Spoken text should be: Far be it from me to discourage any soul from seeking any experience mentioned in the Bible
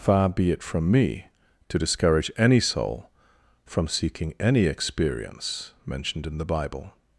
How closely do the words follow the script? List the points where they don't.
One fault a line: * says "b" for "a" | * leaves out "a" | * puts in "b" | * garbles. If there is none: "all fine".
all fine